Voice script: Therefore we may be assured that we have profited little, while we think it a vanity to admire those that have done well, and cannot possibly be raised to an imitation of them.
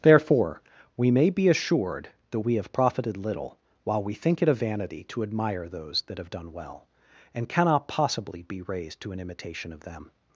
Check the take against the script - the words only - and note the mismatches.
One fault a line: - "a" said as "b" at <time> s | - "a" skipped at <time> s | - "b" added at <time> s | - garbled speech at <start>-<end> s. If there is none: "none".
none